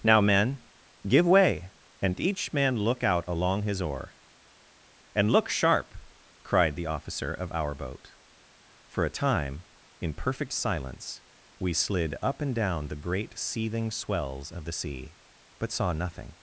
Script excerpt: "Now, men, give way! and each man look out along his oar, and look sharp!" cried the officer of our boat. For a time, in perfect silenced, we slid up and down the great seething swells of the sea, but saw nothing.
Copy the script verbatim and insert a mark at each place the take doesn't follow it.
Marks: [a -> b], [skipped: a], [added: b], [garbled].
"Now, men, give way! and each man look out along his oar, and look sharp!" cried the officer of our boat. For a time, in perfect [silenced, -> silence] we slid up and down the great seething swells of the sea, but saw nothing.